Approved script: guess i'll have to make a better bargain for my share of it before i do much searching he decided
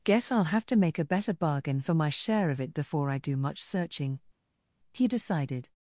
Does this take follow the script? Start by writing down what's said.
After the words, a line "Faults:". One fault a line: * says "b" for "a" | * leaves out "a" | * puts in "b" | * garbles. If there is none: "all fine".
guess i'll have to make a better bargain for my share of it before i do much searching he decided
Faults:
all fine